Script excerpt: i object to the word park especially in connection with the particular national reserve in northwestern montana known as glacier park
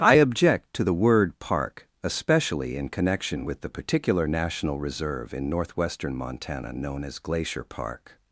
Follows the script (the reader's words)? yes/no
yes